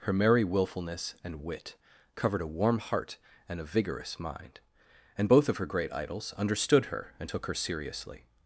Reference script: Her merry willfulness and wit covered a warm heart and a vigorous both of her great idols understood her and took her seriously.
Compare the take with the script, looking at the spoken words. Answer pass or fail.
fail